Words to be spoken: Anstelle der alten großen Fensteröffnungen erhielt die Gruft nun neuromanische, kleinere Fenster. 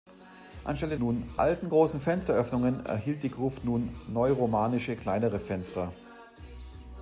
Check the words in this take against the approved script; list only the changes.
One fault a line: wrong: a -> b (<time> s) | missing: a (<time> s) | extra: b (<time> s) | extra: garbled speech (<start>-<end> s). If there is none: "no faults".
wrong: der -> nun (1.0 s)